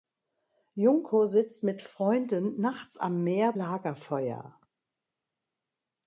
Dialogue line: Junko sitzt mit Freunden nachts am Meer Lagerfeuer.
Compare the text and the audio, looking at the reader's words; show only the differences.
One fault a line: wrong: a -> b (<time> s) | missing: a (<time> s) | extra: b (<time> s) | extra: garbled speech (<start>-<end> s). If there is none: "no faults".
no faults